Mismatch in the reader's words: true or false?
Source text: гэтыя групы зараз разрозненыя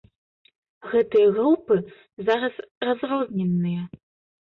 false